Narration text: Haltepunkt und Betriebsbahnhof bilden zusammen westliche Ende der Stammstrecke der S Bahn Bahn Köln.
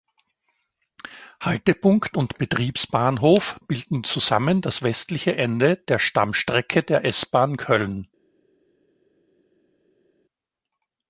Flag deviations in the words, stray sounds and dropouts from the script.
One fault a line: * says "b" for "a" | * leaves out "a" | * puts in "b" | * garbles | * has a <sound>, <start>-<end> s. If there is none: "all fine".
* puts in "das"
* leaves out "Bahn"